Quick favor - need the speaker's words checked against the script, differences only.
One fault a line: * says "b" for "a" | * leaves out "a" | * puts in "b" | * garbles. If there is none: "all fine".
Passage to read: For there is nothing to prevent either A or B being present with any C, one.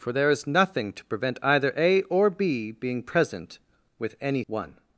* leaves out "C"